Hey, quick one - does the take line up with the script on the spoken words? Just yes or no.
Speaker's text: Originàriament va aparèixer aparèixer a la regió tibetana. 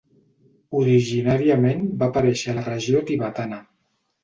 no